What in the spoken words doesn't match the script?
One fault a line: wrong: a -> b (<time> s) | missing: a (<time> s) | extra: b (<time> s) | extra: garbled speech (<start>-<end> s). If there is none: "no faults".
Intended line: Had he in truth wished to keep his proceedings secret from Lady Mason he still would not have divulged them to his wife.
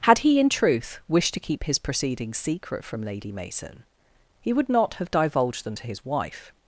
missing: still (4.5 s)